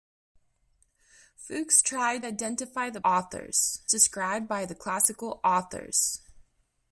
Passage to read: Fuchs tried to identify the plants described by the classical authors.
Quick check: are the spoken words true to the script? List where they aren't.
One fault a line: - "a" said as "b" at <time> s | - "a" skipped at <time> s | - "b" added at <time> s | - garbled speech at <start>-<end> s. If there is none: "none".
- "to" skipped at 2.2 s
- "plants" said as "authors" at 3.0 s